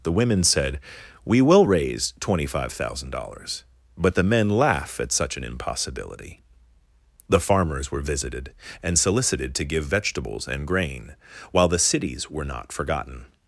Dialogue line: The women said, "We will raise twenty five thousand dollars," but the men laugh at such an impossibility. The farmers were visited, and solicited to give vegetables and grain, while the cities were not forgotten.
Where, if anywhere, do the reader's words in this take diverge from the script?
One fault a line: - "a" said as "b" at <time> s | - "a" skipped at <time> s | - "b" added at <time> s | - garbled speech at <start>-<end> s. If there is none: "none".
none